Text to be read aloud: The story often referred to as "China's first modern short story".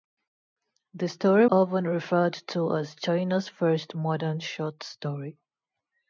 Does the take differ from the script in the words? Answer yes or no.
no